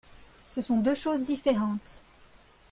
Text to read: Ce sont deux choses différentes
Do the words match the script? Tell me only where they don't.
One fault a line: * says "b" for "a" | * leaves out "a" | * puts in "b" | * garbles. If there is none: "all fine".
all fine